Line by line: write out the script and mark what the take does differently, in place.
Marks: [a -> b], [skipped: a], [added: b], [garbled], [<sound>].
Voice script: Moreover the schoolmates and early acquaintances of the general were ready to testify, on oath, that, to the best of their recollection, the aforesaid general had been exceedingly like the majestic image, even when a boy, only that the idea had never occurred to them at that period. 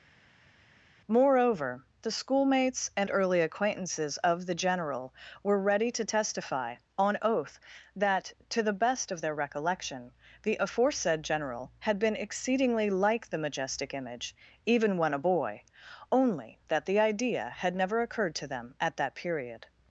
Moreover the schoolmates and early acquaintances of the general were ready to testify, on oath, that, to the best of their recollection, the aforesaid general had been exceedingly like the majestic image, even when a boy, only that the idea had never occurred to them at that period.